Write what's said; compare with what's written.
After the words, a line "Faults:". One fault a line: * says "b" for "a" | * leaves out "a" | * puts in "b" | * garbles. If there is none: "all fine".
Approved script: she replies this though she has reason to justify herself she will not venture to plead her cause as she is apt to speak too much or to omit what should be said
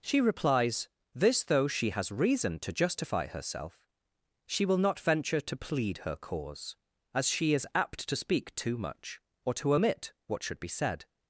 she replies this though she has reason to justify herself she will not venture to plead her cause as she is apt to speak too much or to omit what should be said
Faults:
all fine